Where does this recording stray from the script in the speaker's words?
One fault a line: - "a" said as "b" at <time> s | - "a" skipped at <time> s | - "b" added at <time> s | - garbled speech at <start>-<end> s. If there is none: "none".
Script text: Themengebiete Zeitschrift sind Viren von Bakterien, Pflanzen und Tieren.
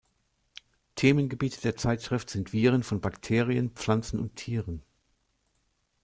- "der" added at 1.6 s